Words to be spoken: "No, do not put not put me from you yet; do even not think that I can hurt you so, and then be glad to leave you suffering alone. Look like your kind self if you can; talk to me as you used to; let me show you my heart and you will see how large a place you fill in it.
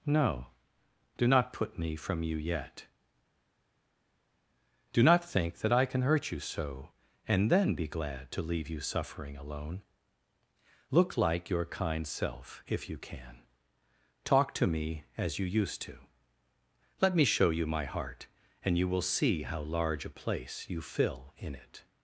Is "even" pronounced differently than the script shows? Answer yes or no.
yes